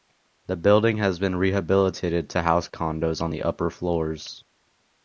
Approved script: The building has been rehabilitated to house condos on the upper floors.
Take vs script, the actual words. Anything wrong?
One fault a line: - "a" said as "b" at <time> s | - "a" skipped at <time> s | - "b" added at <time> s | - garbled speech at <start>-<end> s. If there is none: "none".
none